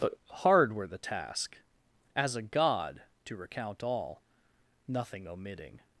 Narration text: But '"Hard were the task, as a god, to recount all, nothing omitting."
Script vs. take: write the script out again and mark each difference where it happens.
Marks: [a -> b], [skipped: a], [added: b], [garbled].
But '"Hard were the task, as a god, to recount all, nothing omitting."